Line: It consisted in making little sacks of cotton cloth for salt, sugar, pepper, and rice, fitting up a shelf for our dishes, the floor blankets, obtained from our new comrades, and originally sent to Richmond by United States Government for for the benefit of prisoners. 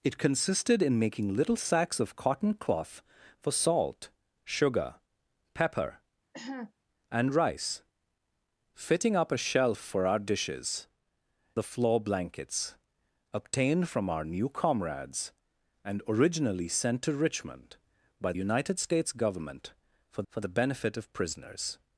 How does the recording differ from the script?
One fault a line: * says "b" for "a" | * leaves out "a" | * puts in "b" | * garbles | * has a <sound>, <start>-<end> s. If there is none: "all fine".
* has a cough, 6.3-6.7 s